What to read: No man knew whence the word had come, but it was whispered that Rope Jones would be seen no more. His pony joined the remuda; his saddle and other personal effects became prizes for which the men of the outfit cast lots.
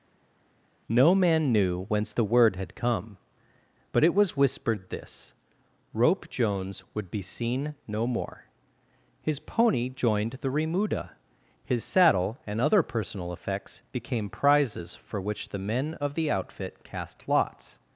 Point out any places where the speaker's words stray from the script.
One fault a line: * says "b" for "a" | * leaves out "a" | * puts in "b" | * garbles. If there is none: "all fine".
* says "this" for "that"